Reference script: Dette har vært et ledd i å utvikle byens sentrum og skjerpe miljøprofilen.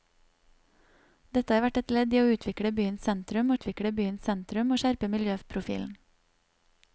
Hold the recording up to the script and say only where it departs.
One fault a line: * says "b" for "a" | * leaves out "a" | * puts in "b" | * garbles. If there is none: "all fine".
* puts in "utvikle byens sentrum"